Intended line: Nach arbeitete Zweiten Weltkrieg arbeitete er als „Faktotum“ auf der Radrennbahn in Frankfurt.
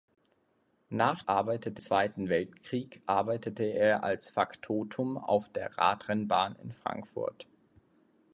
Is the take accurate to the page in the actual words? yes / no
yes